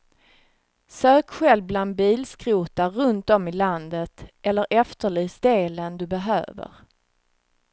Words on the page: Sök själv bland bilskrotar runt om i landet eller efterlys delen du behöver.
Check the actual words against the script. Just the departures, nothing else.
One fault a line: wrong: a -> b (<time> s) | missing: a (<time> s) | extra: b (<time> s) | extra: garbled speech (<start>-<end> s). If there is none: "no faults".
no faults